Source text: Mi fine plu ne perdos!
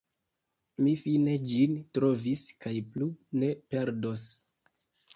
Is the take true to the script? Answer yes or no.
no